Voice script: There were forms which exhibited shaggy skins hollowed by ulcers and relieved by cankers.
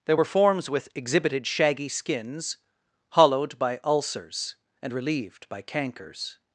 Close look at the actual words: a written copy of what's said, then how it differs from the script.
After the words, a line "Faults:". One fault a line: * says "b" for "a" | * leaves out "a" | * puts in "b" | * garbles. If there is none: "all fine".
There were forms with exhibited shaggy skins hollowed by ulcers and relieved by cankers.
Faults:
* says "with" for "which"